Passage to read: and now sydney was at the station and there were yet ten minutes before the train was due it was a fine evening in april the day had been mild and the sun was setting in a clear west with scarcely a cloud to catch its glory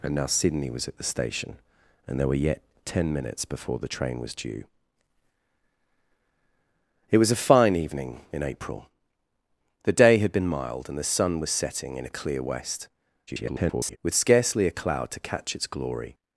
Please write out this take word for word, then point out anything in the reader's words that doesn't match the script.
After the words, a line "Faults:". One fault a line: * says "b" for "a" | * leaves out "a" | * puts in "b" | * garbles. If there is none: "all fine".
and now sydney was at the station and there were yet ten minutes before the train was due it was a fine evening in april the day had been mild and the sun was setting in a clear west [garbled] with scarcely a cloud to catch its glory
Faults:
* garbles